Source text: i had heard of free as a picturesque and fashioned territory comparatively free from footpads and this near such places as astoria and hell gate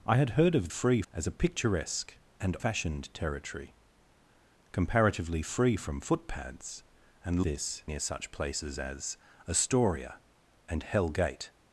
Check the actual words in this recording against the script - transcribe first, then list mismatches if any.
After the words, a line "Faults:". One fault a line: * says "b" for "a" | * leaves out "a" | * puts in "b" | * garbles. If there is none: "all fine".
i had heard of free as a picturesque and fashioned territory comparatively free from footpads and this near such places as astoria and hell gate
Faults:
all fine